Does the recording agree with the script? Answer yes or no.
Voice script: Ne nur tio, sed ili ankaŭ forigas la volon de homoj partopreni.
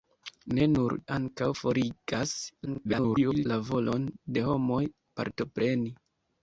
no